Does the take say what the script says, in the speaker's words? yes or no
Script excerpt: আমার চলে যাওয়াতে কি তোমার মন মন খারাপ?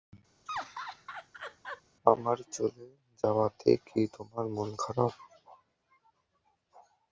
no